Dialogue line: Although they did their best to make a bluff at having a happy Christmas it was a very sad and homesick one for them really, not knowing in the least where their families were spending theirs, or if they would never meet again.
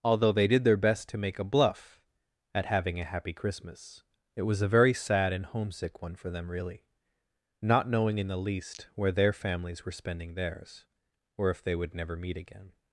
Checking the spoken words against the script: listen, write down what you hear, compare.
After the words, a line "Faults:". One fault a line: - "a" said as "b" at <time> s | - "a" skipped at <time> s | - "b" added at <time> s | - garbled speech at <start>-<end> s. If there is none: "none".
Although they did their best to make a bluff at having a happy Christmas it was a very sad and homesick one for them really, not knowing in the least where their families were spending theirs, or if they would never meet again.
Faults:
none